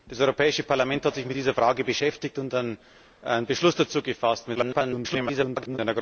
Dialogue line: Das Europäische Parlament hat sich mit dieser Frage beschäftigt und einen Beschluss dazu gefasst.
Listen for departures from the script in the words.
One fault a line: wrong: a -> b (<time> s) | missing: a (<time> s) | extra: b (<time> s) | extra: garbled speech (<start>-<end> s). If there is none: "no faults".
extra: garbled speech (4.5-5.8 s)